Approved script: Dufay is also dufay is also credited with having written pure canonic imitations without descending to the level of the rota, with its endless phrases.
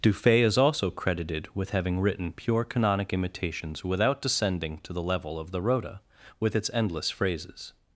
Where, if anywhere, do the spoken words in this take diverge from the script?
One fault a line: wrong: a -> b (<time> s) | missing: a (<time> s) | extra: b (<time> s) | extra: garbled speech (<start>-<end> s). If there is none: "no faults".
missing: dufay is also (0.9 s)